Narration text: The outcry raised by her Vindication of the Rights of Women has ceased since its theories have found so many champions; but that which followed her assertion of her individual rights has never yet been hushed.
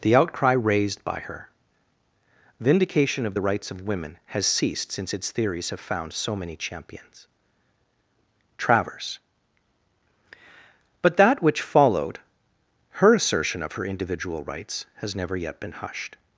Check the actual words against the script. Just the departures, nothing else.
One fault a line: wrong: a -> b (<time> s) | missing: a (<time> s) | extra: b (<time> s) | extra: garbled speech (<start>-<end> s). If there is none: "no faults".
extra: travers (8.6 s)